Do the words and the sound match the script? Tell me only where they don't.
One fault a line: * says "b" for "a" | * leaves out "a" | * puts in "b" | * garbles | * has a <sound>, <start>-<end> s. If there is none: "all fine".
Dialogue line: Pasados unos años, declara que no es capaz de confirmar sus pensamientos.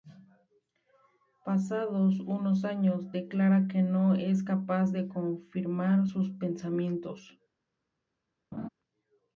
* has a laugh, 8.5-8.7 s